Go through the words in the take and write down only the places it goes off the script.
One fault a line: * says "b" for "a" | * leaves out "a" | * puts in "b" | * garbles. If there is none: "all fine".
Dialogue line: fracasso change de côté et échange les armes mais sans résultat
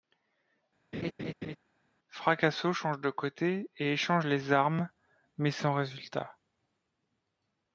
all fine